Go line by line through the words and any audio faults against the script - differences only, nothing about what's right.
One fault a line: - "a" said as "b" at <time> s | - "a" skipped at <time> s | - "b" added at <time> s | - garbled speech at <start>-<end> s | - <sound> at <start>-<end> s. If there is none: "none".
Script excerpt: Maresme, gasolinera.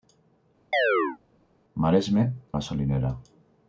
- chirp at 0.7-1.2 s